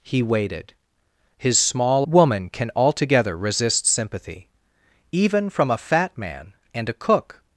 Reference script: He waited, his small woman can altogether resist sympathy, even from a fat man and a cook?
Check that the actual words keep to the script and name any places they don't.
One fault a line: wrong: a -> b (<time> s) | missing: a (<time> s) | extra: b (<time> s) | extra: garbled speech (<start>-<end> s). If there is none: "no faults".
no faults